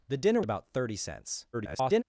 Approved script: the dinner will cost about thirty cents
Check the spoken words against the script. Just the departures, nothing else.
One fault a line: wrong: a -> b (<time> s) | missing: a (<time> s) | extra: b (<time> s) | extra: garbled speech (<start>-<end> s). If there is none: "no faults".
missing: will cost (0.4 s)
extra: garbled speech (1.5-2.0 s)